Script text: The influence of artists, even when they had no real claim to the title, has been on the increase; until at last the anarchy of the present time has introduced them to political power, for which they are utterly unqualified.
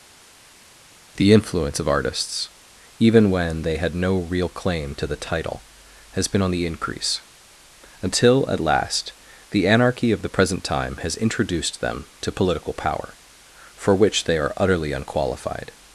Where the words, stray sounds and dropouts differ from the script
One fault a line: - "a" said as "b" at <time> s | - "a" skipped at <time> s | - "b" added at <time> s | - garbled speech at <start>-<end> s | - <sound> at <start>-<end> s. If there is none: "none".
none